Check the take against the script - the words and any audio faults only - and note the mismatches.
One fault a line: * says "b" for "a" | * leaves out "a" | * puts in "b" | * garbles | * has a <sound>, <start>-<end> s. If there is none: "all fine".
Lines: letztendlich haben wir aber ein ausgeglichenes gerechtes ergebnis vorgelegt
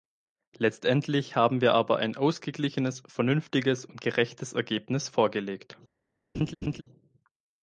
* puts in "vernünftiges und"
* has a laugh, 6.3-6.8 s